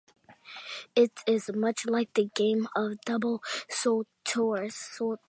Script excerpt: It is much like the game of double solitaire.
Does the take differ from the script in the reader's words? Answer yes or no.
no